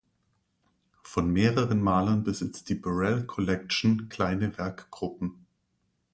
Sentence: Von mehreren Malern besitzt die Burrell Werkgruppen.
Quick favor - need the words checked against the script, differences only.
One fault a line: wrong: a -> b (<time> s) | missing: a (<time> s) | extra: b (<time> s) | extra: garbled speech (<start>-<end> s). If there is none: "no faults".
extra: Collection kleine (3.3 s)